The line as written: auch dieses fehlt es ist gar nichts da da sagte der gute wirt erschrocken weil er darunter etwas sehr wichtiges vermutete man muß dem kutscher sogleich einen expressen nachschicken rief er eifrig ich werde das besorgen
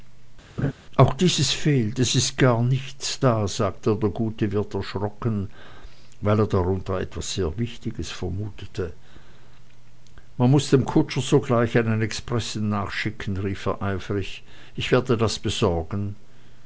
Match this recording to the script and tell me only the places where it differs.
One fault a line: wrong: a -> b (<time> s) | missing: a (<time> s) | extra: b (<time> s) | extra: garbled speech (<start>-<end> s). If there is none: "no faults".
missing: da (3.5 s)